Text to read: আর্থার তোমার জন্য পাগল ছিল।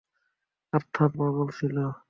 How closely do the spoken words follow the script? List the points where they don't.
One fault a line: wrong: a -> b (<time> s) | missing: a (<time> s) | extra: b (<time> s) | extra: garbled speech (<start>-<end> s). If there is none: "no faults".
missing: তোমার জন্য (1.1 s)